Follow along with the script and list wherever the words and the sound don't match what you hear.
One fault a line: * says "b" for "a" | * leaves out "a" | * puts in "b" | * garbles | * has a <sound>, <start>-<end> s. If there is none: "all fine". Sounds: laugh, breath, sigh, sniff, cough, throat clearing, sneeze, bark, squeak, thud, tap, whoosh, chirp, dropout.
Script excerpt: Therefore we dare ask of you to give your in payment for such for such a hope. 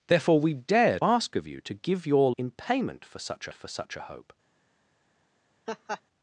* has a laugh, 5.7-6.0 s